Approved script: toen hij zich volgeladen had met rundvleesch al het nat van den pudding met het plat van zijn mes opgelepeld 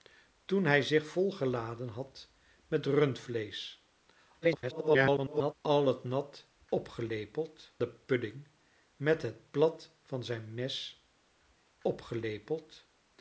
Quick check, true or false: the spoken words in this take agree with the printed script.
false